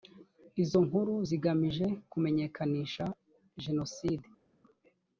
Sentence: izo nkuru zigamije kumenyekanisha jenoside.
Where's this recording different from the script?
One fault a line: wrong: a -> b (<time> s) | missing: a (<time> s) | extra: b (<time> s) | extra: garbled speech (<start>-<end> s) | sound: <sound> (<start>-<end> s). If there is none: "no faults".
no faults